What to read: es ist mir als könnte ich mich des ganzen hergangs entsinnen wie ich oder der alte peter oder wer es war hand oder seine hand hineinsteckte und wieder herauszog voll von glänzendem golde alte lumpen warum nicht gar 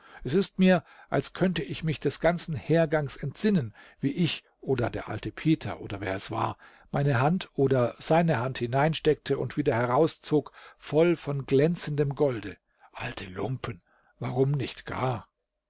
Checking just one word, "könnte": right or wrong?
right